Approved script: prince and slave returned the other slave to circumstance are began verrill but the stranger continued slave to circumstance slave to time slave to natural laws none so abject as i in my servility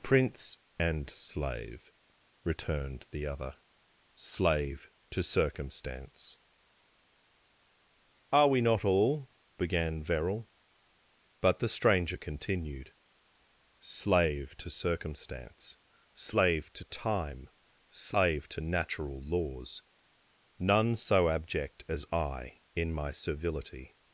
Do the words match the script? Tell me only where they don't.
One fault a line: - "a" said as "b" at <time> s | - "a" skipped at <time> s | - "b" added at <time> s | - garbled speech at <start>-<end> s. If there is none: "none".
- "we not all" added at 8.5 s